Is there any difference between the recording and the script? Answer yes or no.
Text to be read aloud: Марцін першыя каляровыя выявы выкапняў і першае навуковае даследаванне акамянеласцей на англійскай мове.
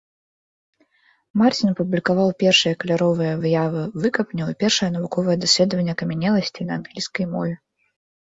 yes